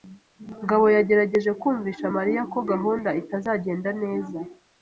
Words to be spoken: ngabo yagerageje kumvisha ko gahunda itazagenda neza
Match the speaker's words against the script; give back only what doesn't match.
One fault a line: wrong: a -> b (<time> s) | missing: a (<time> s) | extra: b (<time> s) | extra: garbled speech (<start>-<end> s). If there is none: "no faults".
extra: mariya (2.1 s)